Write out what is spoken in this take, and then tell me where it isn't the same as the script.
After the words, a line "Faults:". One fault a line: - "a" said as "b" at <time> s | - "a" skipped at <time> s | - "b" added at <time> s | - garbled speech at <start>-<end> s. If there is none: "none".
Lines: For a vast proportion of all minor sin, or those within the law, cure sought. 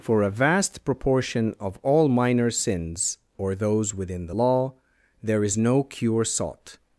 For a vast proportion of all minor sins, or those within the law, there is no cure sought.
Faults:
- "sin" said as "sins" at 2.5 s
- "there is no" added at 5.2 s